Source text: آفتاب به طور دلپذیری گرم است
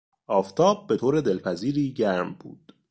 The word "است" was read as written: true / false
false